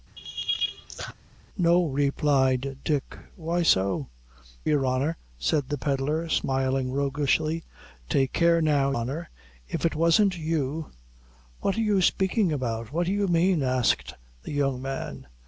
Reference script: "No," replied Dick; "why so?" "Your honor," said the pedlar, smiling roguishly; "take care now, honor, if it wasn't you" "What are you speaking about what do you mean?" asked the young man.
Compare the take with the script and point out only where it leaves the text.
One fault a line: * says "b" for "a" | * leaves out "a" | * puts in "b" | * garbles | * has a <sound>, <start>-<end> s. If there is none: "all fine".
* has a laugh, 0.2-1.1 s